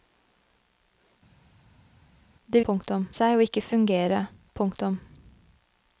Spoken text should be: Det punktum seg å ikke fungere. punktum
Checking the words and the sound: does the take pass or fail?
pass